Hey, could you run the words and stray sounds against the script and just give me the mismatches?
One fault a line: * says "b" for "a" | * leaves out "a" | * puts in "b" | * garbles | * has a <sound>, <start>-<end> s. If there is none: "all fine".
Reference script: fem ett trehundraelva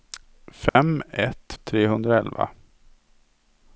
* has a dropout, 0.7-0.8 s